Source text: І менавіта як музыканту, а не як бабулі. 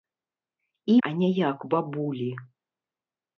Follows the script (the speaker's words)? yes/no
no